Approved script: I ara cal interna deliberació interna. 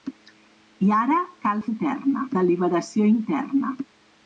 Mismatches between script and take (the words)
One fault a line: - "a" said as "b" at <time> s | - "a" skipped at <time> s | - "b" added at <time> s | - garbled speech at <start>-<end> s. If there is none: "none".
none